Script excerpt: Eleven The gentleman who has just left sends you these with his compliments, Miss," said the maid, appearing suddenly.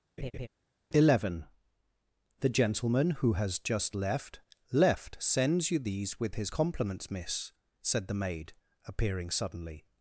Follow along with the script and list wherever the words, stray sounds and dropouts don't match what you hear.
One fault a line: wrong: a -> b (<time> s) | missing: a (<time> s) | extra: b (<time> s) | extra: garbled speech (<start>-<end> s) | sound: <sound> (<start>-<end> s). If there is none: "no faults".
sound: laugh (0.2-0.5 s)
extra: left (4.7 s)